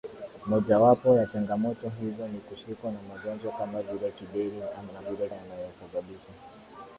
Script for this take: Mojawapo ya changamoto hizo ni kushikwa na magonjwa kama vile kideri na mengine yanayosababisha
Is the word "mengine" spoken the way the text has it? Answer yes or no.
no